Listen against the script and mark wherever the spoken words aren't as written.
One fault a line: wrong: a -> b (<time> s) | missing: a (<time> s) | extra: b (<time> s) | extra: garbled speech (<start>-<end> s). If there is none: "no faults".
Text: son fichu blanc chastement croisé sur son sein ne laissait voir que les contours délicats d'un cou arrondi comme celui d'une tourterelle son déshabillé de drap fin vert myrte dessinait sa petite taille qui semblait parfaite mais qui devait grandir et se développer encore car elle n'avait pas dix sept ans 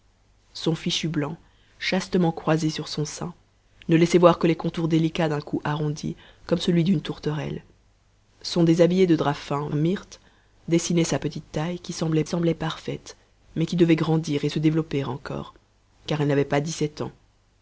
missing: vert (9.7 s)
extra: semblait (12.3 s)